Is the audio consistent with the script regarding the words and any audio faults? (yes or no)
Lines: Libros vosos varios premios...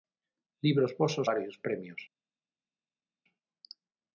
yes